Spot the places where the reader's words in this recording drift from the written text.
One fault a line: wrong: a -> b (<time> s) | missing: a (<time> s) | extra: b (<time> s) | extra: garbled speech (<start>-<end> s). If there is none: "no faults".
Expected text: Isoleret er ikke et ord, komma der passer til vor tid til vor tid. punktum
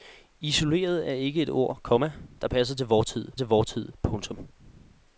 no faults